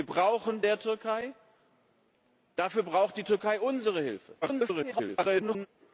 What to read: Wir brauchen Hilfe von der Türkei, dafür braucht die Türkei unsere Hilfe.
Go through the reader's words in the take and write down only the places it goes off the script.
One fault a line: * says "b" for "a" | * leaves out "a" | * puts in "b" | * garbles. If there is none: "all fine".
* leaves out "Hilfe von"
* garbles